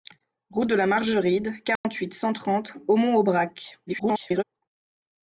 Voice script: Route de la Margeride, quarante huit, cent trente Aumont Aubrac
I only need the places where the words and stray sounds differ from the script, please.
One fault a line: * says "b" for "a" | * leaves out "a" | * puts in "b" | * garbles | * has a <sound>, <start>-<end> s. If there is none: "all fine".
* has a dropout, 1.8-1.8 s
* garbles